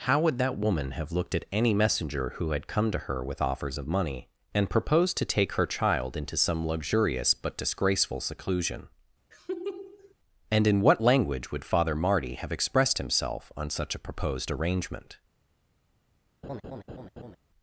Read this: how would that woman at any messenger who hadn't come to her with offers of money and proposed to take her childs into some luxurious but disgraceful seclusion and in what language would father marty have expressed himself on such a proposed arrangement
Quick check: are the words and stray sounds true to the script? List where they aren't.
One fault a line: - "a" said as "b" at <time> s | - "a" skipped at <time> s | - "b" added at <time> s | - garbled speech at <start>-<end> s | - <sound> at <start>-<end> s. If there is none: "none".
- "have looked" added at 0.9 s
- "hadn't" said as "had" at 2.5 s
- "childs" said as "child" at 5.7 s
- laugh at 9.3-10.1 s
- laugh at 16.4-17.4 s